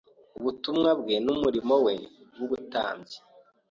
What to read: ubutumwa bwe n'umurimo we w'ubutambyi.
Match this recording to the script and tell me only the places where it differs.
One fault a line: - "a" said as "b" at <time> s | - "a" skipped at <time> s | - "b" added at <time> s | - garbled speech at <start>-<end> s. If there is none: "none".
none